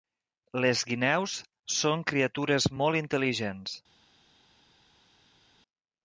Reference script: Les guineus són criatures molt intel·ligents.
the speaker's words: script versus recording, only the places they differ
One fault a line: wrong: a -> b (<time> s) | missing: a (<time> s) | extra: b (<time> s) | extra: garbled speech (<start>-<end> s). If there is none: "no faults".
no faults